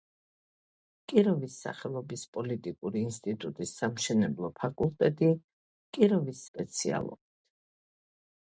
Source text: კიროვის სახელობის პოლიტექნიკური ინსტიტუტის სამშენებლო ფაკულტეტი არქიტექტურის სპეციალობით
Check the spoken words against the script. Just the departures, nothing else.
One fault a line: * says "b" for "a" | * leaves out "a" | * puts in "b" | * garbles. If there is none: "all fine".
* says "კიროვის" for "არქიტექტურის"